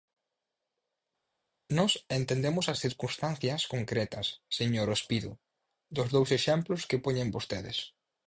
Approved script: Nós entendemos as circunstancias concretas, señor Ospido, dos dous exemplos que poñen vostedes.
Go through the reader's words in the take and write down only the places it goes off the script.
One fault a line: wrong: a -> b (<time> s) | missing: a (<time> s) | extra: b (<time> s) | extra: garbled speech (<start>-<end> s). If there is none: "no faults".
no faults